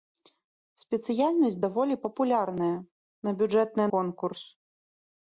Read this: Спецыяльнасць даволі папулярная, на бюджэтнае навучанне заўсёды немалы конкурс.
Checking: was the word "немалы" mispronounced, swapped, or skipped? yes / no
yes